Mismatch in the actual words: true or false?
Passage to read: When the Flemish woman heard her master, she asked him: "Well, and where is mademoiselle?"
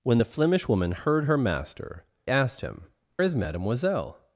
true